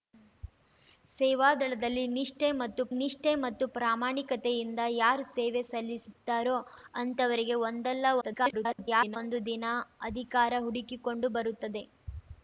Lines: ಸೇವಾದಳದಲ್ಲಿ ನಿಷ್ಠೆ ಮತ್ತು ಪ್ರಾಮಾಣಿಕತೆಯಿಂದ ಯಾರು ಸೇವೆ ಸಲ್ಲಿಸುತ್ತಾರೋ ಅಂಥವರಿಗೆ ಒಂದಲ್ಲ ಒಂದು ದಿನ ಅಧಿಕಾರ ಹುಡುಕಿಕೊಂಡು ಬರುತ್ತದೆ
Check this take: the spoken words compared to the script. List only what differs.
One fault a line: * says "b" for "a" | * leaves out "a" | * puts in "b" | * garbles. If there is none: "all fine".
* puts in "ನಿಷ್ಠೆ ಮತ್ತು"
* garbles